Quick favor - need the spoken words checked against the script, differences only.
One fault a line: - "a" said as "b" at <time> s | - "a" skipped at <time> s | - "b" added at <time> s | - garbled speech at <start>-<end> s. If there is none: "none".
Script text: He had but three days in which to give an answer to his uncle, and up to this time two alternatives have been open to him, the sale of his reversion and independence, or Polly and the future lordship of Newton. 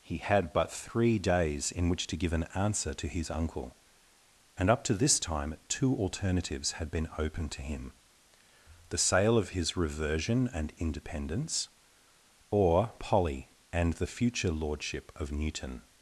- "have" said as "had" at 6.7 s